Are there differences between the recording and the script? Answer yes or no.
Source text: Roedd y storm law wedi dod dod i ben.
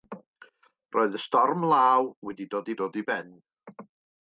no